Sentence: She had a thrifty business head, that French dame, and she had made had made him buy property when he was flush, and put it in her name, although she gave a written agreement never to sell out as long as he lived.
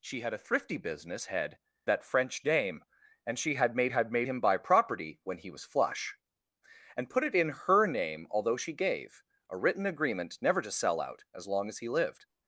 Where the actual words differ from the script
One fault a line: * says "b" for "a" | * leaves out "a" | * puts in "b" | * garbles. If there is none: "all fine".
all fine